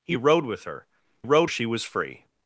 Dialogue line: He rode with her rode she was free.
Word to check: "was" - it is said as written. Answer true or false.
true